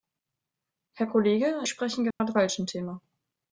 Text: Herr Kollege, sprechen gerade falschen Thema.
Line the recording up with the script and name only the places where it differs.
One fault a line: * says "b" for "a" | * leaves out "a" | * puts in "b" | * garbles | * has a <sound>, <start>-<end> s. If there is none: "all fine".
* has a dropout, 2.1-2.2 s